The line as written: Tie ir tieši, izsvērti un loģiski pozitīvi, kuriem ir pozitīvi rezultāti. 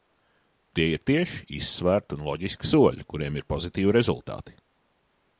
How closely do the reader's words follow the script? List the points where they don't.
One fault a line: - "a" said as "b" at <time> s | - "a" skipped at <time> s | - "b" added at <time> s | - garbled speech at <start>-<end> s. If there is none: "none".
- "pozitīvi" said as "soļi" at 2.7 s